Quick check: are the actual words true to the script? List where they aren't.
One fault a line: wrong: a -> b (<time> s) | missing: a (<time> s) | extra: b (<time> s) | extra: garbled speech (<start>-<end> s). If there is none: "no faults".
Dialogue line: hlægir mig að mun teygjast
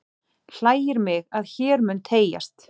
extra: hér (1.6 s)